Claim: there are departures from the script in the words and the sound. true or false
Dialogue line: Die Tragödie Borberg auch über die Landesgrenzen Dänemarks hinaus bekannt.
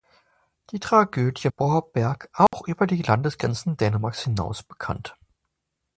true